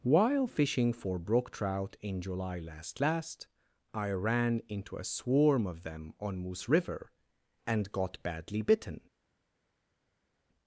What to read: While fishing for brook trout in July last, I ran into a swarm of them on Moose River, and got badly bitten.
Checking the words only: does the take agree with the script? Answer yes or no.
no